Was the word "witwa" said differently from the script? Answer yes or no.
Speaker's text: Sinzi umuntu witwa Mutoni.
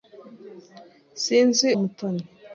yes